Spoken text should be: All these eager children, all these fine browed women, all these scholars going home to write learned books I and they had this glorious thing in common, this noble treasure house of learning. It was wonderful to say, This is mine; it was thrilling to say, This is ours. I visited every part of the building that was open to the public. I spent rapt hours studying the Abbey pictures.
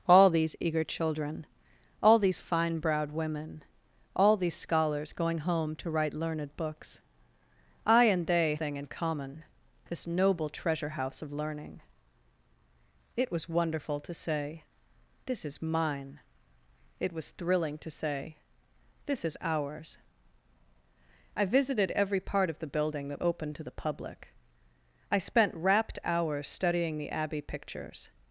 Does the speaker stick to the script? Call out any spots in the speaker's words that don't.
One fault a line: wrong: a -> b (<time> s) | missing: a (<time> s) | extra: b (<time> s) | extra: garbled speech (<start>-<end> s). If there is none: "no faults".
missing: had this glorious (8.6 s)
missing: was (23.2 s)